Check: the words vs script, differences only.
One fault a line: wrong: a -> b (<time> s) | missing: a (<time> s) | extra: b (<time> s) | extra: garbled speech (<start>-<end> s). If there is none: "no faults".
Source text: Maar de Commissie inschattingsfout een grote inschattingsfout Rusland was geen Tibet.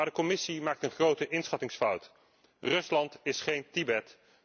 wrong: inschattingsfout -> maakt (0.6 s)
wrong: was -> is (3.2 s)